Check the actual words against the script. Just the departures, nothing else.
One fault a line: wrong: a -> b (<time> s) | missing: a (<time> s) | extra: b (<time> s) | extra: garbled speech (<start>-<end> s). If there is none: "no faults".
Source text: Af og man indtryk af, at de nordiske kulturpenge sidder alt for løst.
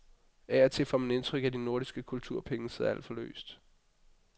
extra: til får (0.7 s)